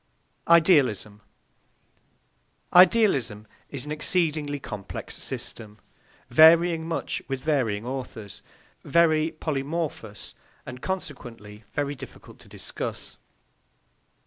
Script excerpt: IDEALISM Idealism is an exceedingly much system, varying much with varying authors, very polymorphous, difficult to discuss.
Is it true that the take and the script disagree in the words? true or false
true